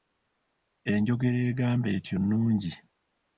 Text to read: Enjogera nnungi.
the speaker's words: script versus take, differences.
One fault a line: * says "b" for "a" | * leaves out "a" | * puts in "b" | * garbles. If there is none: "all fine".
* puts in "egamba etyo"